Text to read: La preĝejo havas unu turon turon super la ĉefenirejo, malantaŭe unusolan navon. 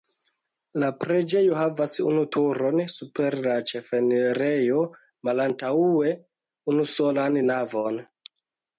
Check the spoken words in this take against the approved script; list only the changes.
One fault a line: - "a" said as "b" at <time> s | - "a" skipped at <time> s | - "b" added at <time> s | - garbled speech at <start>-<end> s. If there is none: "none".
- "turon" skipped at 2.8 s